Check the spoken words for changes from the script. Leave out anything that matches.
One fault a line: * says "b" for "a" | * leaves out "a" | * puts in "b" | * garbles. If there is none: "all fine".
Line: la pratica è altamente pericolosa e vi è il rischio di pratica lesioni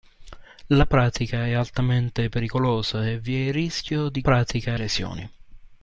all fine